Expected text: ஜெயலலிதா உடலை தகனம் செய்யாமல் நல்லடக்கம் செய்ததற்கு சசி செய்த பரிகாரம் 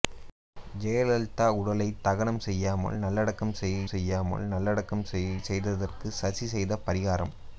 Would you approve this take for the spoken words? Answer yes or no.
no